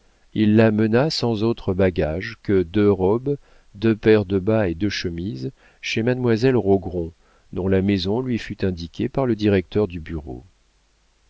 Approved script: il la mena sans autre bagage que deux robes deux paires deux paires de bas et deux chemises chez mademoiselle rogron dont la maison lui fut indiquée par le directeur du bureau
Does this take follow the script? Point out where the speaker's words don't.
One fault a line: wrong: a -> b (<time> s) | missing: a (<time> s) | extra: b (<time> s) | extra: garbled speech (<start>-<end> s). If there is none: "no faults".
missing: deux paires (4.2 s)